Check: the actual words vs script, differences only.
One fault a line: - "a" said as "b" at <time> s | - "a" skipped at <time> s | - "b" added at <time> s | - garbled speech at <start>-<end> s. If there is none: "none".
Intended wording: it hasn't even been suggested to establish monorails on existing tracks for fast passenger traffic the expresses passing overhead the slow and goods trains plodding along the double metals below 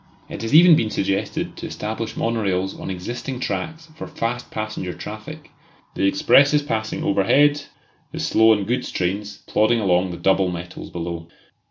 - "hasn't" said as "has" at 0.4 s